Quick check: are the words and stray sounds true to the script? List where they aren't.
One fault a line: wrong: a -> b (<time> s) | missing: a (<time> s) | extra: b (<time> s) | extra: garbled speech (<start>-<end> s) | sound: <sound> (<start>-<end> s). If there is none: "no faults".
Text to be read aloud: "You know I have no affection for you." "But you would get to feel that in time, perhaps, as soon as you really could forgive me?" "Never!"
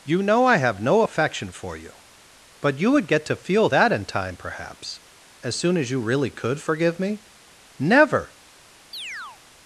sound: chirp (8.9-9.4 s)